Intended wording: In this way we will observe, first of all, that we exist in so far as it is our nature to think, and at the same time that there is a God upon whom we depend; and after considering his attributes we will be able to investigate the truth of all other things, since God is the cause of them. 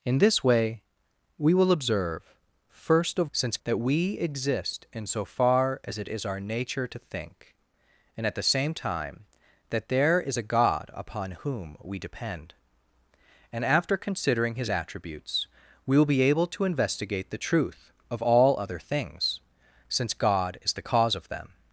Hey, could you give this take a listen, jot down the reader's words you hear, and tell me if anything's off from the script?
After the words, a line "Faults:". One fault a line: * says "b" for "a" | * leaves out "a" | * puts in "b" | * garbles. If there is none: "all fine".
In this way we will observe, first of since, that we exist in so far as it is our nature to think, and at the same time that there is a God upon whom we depend; and after considering his attributes we will be able to investigate the truth of all other things, since God is the cause of them.
Faults:
* says "since" for "all"